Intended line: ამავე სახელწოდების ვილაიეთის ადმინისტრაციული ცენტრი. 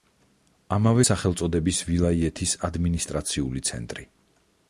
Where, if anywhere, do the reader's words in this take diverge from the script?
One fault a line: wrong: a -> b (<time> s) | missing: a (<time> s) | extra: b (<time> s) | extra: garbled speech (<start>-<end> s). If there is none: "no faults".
no faults